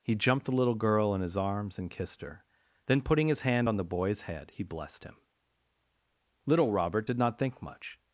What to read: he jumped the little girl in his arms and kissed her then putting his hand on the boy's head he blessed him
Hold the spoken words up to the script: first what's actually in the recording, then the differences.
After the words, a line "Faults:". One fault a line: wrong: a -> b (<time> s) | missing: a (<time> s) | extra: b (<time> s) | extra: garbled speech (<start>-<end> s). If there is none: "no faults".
he jumped the little girl in his arms and kissed her then putting his hand on the boy's head he blessed him little robert did not think much
Faults:
extra: little robert did not think much (6.4 s)